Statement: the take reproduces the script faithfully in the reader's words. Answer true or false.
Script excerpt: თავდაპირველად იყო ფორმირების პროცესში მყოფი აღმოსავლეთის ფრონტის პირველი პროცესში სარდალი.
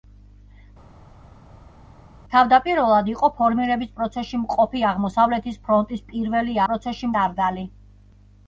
true